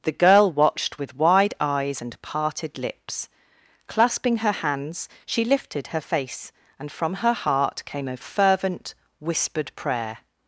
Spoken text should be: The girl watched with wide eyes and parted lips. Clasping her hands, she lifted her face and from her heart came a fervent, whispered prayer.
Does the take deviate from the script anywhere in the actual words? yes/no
no